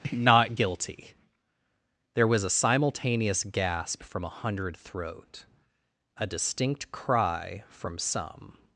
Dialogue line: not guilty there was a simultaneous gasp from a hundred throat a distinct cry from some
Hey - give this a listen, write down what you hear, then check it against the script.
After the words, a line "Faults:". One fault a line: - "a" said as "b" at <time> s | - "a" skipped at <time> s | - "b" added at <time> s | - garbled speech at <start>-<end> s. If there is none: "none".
not guilty there was a simultaneous gasp from a hundred throat a distinct cry from some
Faults:
none